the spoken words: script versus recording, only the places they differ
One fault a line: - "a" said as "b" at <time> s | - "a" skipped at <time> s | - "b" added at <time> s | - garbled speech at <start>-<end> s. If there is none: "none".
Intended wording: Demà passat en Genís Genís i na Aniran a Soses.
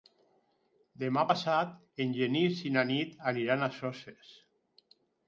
- "Genís" skipped at 2.6 s
- "Nit" added at 2.9 s